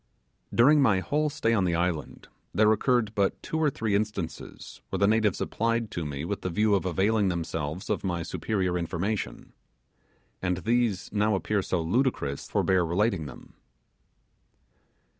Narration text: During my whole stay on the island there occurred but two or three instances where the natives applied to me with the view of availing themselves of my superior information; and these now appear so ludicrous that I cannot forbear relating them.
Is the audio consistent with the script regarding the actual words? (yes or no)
no